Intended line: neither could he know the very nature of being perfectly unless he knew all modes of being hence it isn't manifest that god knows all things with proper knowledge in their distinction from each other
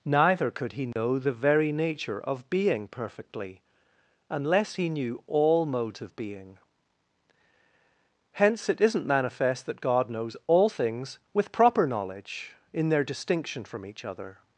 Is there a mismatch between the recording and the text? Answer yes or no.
no